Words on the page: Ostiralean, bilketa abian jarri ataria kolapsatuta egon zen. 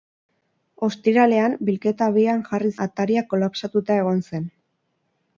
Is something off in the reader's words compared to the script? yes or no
no